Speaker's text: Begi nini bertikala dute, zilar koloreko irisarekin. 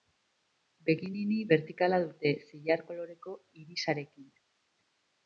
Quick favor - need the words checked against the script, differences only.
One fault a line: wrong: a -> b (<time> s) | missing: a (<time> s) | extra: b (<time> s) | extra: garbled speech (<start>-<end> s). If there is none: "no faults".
no faults